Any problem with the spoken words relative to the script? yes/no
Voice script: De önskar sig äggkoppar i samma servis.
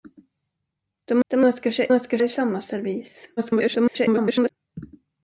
yes